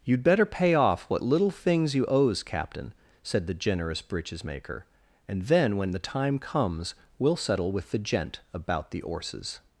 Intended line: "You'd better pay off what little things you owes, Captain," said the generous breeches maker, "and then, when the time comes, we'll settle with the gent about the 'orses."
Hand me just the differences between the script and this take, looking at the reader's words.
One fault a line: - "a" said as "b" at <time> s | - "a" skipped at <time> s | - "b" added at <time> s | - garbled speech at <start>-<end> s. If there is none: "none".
none